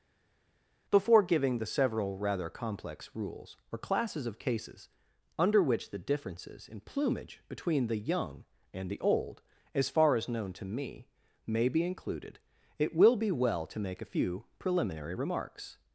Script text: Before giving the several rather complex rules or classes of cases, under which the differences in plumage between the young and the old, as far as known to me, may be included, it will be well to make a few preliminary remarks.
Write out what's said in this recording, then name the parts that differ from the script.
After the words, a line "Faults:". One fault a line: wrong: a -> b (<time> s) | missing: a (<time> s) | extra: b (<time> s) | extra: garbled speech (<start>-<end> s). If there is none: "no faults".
Before giving the several rather complex rules or classes of cases, under which the differences in plumage between the young and the old, as far as known to me, may be included, it will be well to make a few preliminary remarks.
Faults:
no faults